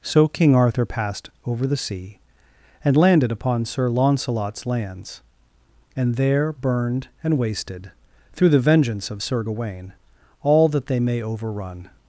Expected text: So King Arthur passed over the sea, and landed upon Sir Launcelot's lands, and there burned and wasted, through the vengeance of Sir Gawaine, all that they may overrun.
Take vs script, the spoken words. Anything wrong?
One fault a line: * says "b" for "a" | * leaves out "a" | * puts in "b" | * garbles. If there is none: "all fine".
all fine